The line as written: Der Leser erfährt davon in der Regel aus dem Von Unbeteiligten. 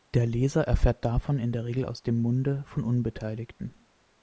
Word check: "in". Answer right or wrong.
right